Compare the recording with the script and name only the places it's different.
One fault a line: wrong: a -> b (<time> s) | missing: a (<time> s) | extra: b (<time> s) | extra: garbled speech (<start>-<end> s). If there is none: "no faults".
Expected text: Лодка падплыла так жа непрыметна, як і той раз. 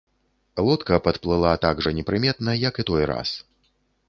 no faults